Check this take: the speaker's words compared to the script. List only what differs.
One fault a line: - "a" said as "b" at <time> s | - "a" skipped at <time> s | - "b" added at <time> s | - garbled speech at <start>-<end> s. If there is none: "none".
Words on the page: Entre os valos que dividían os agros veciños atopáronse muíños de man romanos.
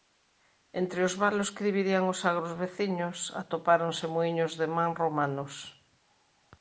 none